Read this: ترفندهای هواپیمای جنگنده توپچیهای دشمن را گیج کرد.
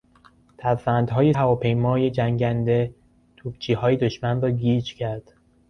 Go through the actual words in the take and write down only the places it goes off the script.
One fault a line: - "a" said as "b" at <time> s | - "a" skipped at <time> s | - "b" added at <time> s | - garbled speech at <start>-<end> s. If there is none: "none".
none